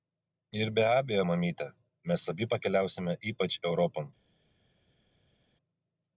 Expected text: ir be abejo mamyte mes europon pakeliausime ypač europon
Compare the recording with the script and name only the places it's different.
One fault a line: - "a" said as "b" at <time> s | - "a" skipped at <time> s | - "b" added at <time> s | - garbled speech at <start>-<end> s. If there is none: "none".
- "europon" said as "abi" at 2.3 s